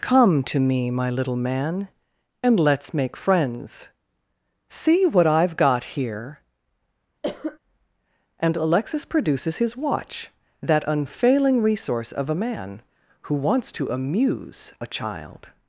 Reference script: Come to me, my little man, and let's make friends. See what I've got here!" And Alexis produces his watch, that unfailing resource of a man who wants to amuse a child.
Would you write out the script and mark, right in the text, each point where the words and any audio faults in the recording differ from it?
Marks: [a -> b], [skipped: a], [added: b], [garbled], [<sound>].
Come to me, my little man, and let's make friends. See what I've got here!" [cough] And Alexis produces his watch, that unfailing resource of a man who wants to amuse a child.